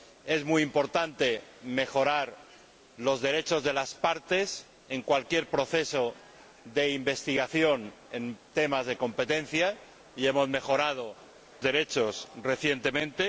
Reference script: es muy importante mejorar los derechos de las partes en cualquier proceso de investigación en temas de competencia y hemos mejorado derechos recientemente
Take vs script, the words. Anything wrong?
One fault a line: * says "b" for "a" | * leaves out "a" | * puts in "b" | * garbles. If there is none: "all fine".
all fine